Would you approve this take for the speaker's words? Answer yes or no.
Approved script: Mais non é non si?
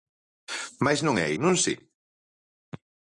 yes